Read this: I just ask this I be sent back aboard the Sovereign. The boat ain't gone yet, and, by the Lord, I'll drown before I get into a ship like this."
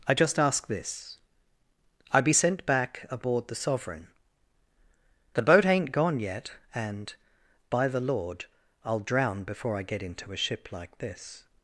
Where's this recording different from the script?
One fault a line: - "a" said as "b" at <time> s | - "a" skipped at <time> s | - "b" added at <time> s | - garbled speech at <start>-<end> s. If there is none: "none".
none